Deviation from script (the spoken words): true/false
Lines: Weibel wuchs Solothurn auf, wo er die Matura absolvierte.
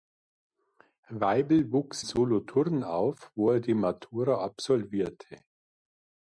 false